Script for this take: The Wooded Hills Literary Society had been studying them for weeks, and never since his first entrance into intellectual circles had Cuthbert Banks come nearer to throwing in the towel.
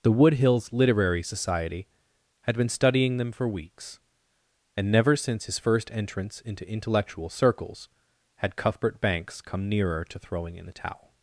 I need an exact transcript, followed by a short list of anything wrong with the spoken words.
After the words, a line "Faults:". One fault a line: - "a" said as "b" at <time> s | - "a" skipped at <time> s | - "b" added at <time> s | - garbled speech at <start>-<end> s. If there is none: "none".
The Wood Hills Literary Society had been studying them for weeks, and never since his first entrance into intellectual circles had Cuthbert Banks come nearer to throwing in the towel.
Faults:
- "Wooded" said as "Wood" at 0.1 s